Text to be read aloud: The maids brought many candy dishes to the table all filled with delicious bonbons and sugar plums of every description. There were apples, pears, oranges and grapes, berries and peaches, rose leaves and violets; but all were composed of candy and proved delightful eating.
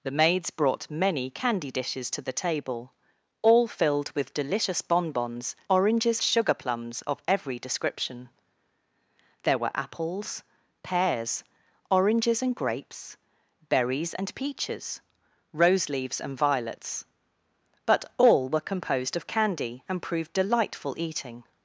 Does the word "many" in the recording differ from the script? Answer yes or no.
no